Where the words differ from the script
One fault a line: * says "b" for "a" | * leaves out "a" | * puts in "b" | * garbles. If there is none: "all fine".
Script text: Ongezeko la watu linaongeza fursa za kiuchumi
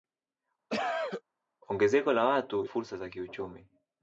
* leaves out "linaongeza"